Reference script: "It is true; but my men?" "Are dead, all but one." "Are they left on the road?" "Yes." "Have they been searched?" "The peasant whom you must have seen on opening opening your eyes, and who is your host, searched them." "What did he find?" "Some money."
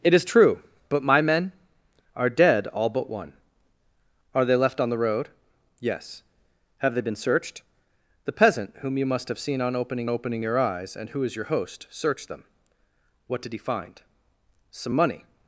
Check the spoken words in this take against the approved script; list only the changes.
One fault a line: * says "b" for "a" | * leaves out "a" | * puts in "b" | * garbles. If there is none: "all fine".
all fine